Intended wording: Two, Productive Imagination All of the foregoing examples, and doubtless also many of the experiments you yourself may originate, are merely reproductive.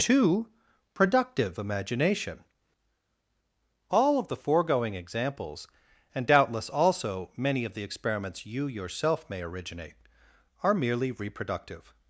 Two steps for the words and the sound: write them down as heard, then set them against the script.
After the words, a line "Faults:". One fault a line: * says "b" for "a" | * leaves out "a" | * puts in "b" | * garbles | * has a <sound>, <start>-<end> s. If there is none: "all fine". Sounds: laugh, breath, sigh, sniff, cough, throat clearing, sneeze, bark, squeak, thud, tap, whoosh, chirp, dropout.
Two, Productive Imagination All of the foregoing examples, and doubtless also many of the experiments you yourself may originate, are merely reproductive.
Faults:
all fine